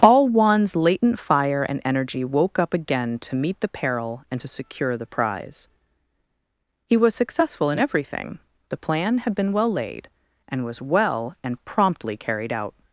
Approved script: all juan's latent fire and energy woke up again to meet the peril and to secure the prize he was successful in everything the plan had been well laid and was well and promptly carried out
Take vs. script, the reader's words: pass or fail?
pass